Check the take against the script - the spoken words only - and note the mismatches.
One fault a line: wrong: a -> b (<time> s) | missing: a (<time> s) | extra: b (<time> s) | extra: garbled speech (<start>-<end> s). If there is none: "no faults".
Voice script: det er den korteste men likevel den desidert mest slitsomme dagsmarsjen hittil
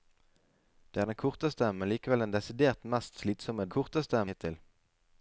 wrong: dagsmarsjen -> korteste (3.8 s)